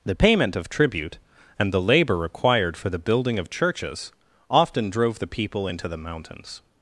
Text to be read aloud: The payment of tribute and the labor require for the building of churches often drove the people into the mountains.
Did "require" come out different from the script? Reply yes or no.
yes